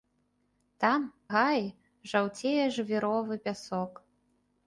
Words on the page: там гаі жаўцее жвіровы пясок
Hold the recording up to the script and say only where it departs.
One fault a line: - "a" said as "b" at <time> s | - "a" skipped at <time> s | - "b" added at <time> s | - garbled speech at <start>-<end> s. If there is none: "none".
none